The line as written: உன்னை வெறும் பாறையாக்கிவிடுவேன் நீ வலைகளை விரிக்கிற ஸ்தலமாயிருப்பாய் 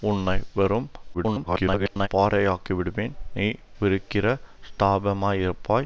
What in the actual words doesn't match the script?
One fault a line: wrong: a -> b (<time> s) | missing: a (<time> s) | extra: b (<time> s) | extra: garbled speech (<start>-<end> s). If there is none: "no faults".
extra: garbled speech (1.1-2.1 s)
missing: வலைகளை (3.5 s)